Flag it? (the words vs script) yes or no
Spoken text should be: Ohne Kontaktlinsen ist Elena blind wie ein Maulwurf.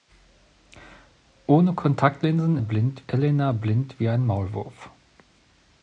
yes